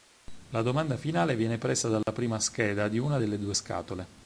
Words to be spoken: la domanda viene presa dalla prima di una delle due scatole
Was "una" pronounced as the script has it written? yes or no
yes